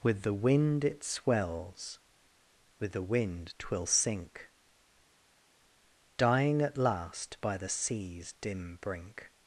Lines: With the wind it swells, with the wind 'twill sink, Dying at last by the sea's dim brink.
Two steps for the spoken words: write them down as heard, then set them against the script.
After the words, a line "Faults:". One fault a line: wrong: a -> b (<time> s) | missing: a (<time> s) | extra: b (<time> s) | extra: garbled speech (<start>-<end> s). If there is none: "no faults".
With the wind it swells, with the wind 'twill sink, Dying at last by the sea's dim brink.
Faults:
no faults